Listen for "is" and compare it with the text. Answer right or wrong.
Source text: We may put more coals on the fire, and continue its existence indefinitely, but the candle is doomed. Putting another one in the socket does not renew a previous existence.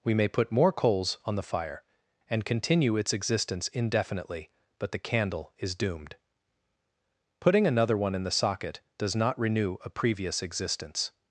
right